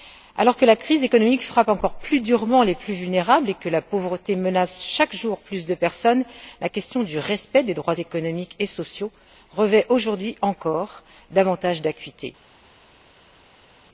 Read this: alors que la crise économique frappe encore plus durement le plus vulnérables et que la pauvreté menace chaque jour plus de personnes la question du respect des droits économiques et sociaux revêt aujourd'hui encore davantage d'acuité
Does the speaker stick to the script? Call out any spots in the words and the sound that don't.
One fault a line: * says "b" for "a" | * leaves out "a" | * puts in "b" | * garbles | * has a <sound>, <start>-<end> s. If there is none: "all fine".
* says "les" for "le"